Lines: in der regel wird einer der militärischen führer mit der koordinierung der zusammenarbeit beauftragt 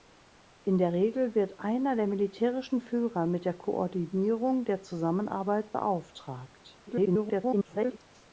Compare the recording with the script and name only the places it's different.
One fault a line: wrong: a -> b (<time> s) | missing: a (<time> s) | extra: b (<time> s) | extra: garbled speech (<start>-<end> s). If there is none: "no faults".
extra: garbled speech (6.9-8.0 s)